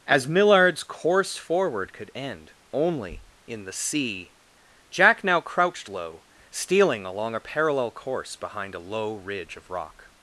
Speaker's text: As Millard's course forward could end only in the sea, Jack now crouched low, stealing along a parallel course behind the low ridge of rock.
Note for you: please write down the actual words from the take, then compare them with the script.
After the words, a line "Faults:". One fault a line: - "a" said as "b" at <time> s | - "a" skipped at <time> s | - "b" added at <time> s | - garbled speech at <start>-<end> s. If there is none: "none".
As Millard's course forward could end only in the sea, Jack now crouched low, stealing along a parallel course behind a low ridge of rock.
Faults:
- "the" said as "a" at 8.7 s